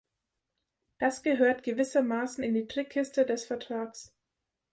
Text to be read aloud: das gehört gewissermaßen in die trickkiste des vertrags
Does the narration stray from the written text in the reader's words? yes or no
no